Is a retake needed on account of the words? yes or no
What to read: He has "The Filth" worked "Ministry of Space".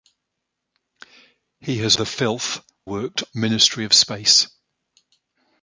no